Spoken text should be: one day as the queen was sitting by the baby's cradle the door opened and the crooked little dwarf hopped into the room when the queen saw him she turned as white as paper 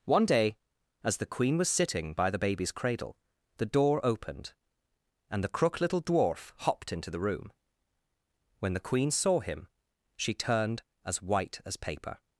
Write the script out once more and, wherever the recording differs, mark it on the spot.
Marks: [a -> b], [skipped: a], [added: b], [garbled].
one day as the queen was sitting by the baby's cradle the door opened and the [crooked -> crook] little dwarf hopped into the room when the queen saw him she turned as white as paper